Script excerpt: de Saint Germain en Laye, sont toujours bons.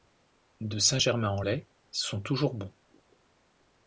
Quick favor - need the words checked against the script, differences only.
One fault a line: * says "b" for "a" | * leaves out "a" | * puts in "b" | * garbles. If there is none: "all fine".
all fine